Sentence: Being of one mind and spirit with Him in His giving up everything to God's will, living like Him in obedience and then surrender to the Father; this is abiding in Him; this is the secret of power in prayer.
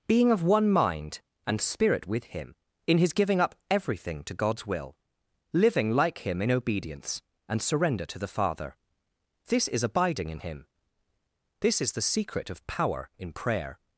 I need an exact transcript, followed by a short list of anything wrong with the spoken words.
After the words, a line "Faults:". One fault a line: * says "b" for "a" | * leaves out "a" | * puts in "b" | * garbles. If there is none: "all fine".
Being of one mind and spirit with Him in His giving up everything to God's will, living like Him in obedience and surrender to the Father; this is abiding in Him; this is the secret of power in prayer.
Faults:
* leaves out "then"